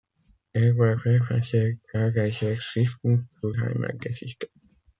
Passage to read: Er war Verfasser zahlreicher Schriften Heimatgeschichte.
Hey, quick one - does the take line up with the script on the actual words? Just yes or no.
no